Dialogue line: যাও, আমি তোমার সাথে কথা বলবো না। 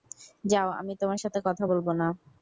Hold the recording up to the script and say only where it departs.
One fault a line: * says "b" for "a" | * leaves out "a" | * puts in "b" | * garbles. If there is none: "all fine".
all fine